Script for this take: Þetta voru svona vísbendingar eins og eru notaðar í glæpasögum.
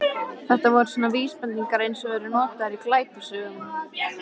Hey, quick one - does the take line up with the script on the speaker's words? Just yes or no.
yes